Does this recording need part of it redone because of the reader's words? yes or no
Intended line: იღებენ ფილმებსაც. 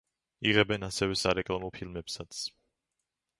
yes